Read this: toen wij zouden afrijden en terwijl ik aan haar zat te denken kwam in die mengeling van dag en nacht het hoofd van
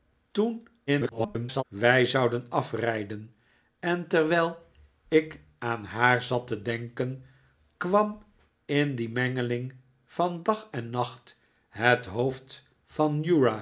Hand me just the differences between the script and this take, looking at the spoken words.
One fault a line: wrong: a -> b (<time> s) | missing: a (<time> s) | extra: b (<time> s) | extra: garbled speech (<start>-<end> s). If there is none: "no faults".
extra: garbled speech (0.9-1.6 s)